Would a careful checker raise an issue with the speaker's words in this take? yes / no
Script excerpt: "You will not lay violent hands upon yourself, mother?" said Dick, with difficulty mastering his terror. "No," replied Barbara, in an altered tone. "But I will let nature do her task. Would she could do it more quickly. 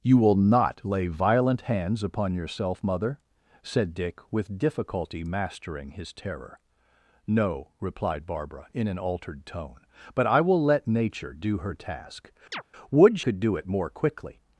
yes